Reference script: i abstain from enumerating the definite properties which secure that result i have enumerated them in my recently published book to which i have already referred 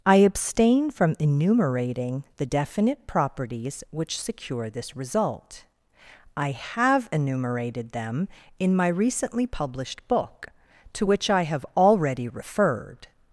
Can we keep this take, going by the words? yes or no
no